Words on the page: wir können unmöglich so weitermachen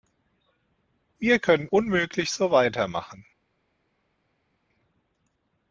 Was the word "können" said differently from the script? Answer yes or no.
no